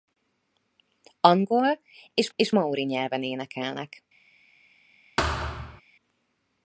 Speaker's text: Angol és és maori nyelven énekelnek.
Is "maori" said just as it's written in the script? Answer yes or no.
yes